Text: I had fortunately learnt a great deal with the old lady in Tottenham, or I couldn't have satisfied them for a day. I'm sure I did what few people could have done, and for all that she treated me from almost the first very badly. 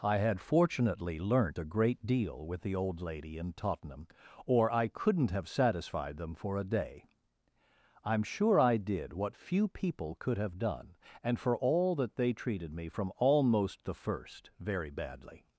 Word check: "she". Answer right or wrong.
wrong